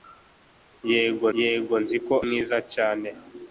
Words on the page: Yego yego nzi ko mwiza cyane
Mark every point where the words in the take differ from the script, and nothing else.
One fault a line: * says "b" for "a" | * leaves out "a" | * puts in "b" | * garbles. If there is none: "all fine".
all fine